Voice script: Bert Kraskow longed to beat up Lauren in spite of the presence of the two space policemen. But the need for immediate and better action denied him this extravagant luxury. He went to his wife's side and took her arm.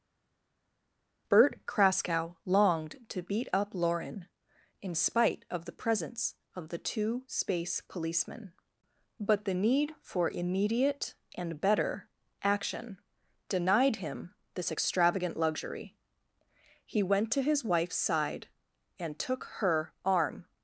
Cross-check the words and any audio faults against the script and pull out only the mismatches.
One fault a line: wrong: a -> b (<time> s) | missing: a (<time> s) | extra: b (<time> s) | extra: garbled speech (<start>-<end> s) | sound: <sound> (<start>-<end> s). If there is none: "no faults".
no faults